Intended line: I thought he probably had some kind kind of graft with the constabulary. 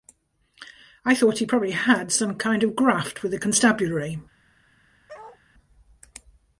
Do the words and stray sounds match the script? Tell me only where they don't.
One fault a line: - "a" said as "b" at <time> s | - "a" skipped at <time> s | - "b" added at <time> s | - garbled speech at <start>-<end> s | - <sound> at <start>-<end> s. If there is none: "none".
- "kind" skipped at 2.6 s
- bark at 5.1-5.4 s